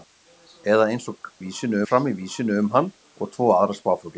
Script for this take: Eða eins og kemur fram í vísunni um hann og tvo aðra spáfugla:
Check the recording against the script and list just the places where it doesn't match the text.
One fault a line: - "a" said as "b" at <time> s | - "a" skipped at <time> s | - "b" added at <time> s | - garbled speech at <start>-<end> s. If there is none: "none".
- "kemur" said as "vísunni" at 1.4 s